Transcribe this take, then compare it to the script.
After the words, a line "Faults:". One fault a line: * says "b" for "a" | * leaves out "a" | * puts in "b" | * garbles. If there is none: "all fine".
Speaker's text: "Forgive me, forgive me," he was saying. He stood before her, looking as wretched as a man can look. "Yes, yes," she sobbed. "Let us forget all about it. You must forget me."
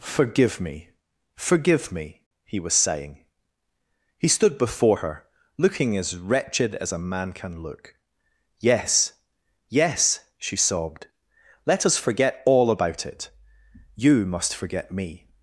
"Forgive me, forgive me," he was saying. He stood before her, looking as wretched as a man can look. "Yes, yes," she sobbed. "Let us forget all about it. You must forget me."
Faults:
all fine